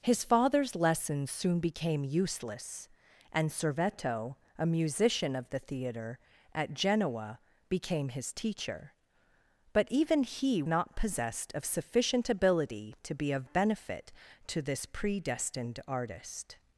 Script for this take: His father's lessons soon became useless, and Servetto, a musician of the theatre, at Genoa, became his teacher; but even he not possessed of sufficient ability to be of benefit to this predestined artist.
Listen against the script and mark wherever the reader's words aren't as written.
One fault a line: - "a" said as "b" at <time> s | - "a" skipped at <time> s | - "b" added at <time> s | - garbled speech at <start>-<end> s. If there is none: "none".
none